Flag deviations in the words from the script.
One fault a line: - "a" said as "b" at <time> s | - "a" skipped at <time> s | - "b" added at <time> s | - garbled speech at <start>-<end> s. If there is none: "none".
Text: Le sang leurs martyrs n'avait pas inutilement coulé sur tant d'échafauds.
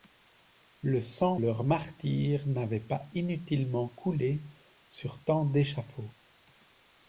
none